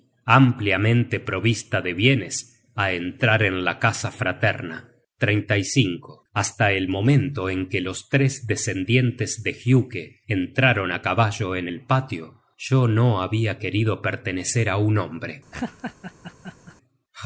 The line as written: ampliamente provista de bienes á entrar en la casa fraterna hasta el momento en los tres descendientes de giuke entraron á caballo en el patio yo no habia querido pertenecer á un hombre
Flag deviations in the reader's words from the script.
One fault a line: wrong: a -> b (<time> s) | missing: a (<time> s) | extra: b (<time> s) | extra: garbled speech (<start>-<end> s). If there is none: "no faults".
extra: que (7.7 s)